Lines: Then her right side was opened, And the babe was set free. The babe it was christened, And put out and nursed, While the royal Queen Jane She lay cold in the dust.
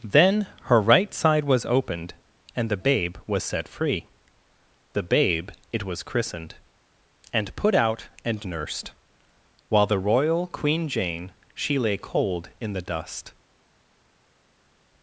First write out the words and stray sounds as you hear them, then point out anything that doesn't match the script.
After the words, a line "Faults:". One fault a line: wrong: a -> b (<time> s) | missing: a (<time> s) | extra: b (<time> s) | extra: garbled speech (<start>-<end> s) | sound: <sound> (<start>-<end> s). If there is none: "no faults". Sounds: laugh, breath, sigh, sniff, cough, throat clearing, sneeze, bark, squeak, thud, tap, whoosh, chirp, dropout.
Then her right side was opened, And the babe was set free. The babe it was christened, And put out and nursed, While the royal Queen Jane She lay cold in the dust.
Faults:
no faults